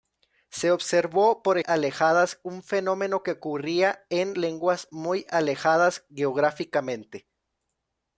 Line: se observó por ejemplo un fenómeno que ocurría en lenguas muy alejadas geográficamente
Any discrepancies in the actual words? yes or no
yes